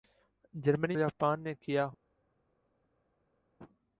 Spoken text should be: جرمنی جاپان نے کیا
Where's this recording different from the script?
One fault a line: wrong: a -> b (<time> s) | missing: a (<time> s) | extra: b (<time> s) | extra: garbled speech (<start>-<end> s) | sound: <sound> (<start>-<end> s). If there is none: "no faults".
no faults